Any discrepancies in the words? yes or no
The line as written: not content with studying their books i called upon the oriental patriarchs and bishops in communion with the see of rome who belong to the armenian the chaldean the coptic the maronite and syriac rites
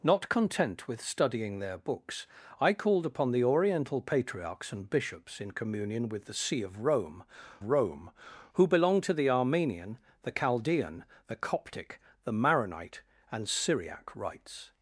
yes